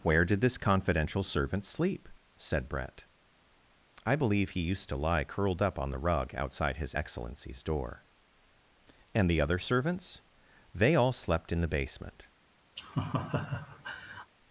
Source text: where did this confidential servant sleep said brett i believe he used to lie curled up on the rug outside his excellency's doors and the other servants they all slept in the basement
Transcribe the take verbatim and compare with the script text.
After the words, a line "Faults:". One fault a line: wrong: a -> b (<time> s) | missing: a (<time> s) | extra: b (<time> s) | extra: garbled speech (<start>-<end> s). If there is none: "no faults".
where did this confidential servant sleep said brett i believe he used to lie curled up on the rug outside his excellency's door and the other servants they all slept in the basement
Faults:
wrong: doors -> door (7.6 s)